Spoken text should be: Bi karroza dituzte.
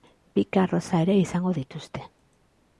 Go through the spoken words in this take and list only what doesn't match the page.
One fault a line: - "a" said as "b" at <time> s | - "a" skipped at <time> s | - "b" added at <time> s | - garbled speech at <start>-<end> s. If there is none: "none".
- "ere izango" added at 1.1 s